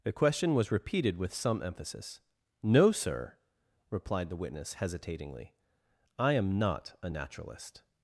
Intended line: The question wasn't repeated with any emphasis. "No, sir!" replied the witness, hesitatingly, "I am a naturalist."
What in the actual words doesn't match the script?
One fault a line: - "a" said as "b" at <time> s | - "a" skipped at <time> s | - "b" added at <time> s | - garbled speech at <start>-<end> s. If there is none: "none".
- "wasn't" said as "was" at 0.6 s
- "any" said as "some" at 1.3 s
- "not" added at 6.6 s